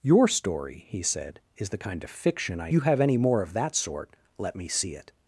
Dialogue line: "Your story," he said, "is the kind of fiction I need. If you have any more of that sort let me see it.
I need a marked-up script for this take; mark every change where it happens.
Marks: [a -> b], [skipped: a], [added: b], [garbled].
"Your story," he said, "is the kind of fiction I [skipped: need. If] you have any more of that sort let me see it.